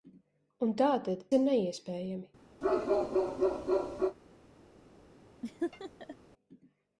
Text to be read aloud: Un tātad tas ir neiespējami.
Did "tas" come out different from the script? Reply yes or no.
yes